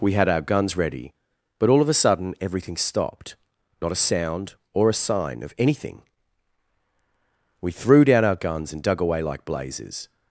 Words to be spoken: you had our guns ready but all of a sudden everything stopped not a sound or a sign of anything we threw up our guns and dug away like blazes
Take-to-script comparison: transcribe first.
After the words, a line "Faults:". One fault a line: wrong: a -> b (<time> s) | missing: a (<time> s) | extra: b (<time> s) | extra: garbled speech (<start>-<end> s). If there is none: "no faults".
we had our guns ready but all of a sudden everything stopped not a sound or a sign of anything we threw down our guns and dug away like blazes
Faults:
wrong: you -> we (0.0 s)
wrong: up -> down (8.0 s)